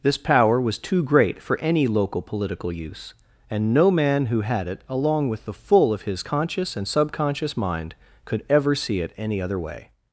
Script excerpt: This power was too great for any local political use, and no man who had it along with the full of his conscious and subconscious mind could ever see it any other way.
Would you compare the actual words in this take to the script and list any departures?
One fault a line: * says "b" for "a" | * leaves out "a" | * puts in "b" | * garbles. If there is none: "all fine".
all fine